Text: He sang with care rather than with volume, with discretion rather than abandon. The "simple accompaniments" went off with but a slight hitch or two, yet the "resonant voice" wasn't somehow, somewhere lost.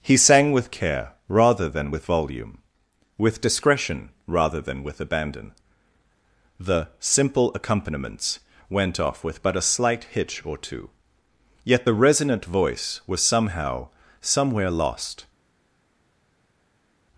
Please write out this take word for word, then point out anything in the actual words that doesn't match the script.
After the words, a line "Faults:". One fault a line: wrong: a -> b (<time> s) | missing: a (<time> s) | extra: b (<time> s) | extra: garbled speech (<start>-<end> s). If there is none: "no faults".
He sang with care rather than with volume, with discretion rather than with abandon. The "simple accompaniments" went off with but a slight hitch or two, yet the "resonant voice" was somehow, somewhere lost.
Faults:
extra: with (4.8 s)
wrong: wasn't -> was (13.1 s)